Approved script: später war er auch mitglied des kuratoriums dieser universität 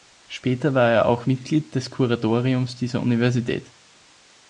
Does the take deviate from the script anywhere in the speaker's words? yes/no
no